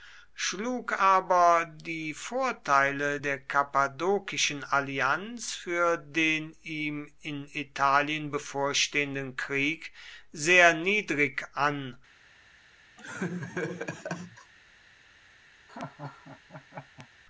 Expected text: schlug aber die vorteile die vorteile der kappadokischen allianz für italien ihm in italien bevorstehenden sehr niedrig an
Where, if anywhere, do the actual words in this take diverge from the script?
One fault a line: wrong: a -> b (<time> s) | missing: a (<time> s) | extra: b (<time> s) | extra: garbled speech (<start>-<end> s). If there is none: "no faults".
missing: die vorteile (3.2 s)
wrong: italien -> den (6.0 s)
extra: krieg (9.3 s)